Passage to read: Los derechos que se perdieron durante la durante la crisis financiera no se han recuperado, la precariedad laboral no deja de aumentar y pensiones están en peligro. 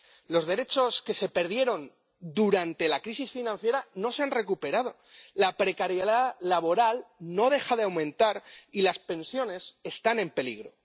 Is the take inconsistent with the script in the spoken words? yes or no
yes